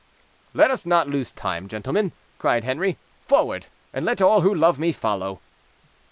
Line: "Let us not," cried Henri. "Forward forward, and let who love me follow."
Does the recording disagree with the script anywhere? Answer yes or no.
yes